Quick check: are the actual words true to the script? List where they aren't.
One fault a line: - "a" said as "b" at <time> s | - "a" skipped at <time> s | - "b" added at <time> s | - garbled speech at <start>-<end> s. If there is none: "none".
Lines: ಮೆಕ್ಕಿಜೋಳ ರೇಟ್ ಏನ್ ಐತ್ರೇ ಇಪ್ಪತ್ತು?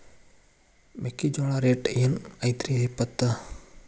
none